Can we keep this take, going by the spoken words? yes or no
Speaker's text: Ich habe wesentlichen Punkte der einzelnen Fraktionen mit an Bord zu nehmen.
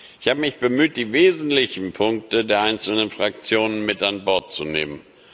no